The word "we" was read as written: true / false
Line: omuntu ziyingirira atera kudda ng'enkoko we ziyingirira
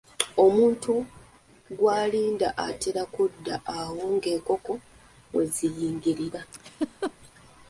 true